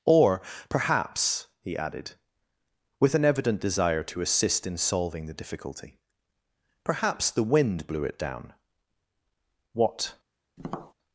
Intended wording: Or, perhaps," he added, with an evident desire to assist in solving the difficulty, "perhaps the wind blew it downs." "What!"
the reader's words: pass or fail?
fail